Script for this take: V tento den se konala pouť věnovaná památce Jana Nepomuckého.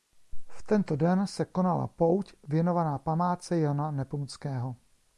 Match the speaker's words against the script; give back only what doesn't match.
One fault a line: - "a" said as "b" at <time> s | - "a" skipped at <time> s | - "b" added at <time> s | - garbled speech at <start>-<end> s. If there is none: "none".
none